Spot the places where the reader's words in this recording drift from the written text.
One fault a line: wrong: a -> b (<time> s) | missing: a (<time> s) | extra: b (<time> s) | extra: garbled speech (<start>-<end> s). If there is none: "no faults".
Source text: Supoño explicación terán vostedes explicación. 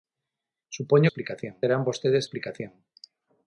no faults